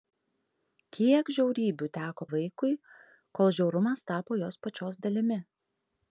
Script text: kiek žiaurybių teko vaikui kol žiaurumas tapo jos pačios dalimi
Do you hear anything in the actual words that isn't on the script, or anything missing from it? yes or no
no